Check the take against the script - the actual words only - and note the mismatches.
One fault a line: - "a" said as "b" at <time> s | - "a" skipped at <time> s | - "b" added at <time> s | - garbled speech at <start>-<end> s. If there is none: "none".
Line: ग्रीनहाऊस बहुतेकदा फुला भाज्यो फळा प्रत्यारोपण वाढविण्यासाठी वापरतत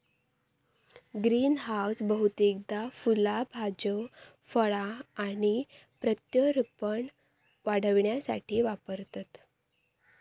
- "आणि" added at 5.2 s